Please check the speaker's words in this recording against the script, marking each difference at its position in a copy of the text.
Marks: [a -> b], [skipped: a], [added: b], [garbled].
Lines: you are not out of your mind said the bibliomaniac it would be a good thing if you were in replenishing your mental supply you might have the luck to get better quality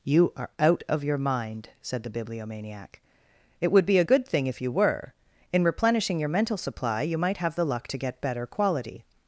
you are [skipped: not] out of your mind said the bibliomaniac it would be a good thing if you were in replenishing your mental supply you might have the luck to get better quality